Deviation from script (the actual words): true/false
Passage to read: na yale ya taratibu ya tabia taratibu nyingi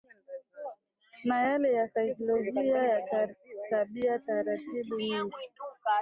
true